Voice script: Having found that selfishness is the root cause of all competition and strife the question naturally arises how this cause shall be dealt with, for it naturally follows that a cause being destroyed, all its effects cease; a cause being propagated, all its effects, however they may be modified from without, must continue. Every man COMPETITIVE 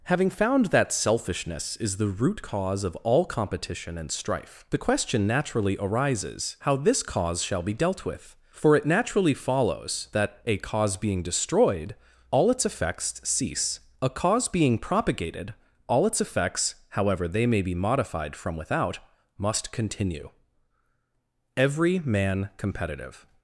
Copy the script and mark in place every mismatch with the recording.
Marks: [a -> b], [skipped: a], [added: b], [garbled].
Having found that selfishness is the root cause of all competition and strife the question naturally arises how this cause shall be dealt with, for it naturally follows that a cause being destroyed, all its effects cease; a cause being propagated, all its effects, however they may be modified from without, must continue. Every man COMPETITIVE